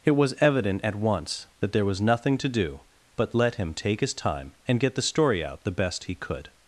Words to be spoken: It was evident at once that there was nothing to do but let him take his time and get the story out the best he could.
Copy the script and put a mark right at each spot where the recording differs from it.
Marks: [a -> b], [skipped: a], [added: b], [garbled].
It was evident at once that there was nothing to do but let him take his time and get the story out the best he could.